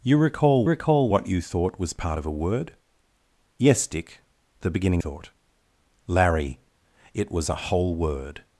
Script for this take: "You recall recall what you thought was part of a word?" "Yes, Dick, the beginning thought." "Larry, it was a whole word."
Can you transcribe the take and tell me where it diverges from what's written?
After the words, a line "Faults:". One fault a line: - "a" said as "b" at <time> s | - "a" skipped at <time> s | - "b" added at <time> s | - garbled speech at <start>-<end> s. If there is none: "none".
"You recall recall what you thought was part of a word?" "Yes, Dick, the beginning thought." "Larry, it was a whole word."
Faults:
none